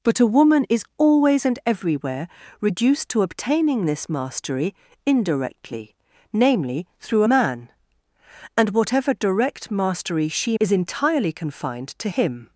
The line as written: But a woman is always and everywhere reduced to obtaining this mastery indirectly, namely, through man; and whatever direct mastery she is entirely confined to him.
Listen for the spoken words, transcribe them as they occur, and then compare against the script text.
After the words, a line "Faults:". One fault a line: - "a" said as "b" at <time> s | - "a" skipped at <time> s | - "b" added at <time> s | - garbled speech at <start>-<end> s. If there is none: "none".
But a woman is always and everywhere reduced to obtaining this mastery indirectly, namely, through man; and whatever direct mastery she is entirely confined to him.
Faults:
none